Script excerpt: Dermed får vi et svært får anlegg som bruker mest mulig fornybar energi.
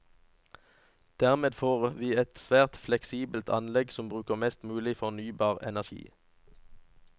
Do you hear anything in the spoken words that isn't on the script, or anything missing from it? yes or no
yes